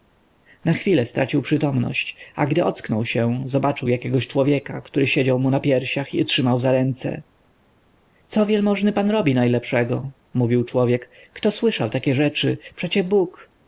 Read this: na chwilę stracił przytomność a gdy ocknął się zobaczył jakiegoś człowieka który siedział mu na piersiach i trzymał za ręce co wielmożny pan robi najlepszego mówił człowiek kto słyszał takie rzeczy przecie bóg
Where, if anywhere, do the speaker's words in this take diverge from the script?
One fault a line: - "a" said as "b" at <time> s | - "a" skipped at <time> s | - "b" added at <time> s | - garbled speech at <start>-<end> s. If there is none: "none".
none